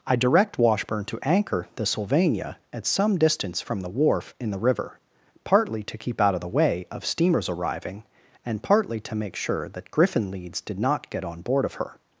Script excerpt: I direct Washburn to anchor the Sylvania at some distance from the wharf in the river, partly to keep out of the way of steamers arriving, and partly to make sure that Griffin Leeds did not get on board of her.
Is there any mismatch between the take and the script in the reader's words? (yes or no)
no